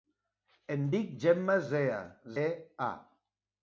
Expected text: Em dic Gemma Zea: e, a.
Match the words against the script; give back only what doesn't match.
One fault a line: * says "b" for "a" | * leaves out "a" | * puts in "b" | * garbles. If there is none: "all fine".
all fine